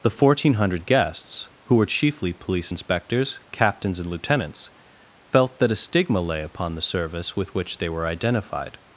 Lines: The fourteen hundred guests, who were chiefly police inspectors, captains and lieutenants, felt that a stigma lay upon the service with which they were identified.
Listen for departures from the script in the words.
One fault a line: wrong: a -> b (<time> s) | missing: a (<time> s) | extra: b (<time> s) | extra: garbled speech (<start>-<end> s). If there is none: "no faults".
no faults